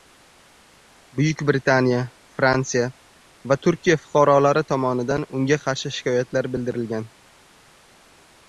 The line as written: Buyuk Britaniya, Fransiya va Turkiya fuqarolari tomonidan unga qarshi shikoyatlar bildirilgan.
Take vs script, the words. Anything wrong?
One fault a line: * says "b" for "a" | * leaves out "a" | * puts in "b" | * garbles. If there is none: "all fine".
all fine